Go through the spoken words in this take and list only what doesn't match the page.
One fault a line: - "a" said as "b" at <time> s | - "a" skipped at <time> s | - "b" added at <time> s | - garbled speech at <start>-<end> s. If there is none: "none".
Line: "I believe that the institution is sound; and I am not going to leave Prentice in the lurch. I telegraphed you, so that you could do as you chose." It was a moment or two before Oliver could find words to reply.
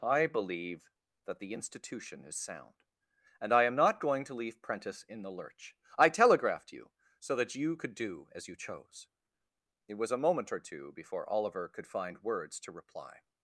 none